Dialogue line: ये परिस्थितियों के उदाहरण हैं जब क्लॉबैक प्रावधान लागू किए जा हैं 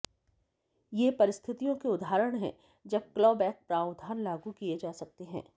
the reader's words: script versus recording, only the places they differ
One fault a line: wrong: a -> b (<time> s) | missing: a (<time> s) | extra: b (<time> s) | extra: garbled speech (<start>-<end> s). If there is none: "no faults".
extra: सकते (4.9 s)